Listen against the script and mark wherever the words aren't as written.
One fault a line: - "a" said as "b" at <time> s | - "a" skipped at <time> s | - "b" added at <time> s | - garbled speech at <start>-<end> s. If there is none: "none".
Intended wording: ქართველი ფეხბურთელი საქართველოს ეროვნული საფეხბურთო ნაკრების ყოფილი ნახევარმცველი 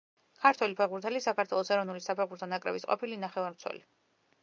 none